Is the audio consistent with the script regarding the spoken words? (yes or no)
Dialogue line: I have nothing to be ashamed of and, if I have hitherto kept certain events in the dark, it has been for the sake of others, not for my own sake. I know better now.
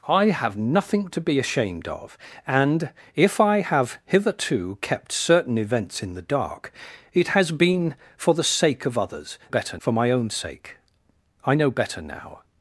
no